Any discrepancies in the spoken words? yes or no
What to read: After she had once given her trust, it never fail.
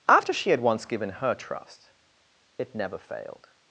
yes